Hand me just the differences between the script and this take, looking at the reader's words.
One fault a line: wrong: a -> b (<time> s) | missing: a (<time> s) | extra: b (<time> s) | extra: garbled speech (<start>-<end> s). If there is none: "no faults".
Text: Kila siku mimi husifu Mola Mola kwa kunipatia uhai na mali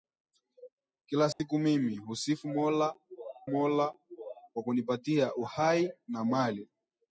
no faults